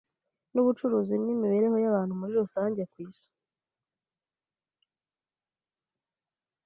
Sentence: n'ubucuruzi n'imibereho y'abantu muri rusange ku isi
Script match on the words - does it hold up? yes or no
yes